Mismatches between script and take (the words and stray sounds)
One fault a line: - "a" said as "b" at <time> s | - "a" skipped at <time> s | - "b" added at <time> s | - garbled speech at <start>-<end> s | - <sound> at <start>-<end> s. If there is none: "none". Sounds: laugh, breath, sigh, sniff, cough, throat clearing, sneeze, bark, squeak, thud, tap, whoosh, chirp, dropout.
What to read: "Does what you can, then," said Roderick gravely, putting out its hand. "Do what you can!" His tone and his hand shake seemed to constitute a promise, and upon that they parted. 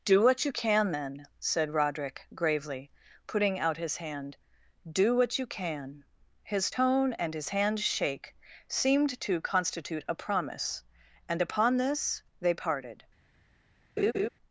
- "Does" said as "Do" at 0.0 s
- "its" said as "his" at 3.8 s
- "that" said as "this" at 11.8 s
- laugh at 14.0-14.3 s